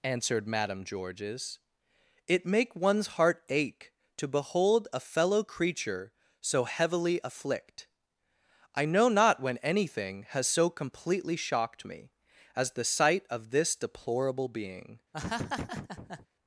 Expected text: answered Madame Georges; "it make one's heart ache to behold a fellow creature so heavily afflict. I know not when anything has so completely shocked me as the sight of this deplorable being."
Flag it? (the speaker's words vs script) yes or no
no